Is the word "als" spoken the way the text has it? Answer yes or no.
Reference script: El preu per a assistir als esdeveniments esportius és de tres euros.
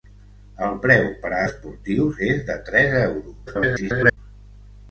no